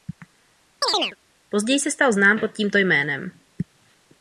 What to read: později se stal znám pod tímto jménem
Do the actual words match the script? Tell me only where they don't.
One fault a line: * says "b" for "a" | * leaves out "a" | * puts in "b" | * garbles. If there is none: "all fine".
all fine